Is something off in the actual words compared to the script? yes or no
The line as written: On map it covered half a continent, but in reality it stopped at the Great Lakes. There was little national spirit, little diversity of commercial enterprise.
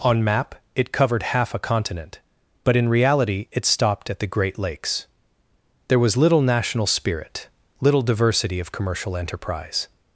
no